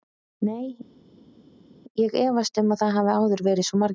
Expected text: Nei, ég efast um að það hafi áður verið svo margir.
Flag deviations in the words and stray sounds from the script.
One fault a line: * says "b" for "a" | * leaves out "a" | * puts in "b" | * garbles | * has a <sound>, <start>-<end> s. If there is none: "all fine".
all fine